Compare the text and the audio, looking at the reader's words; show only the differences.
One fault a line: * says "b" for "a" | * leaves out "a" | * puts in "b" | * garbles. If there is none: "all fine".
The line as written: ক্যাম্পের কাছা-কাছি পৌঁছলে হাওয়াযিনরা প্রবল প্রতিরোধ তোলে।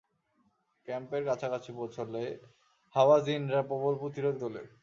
all fine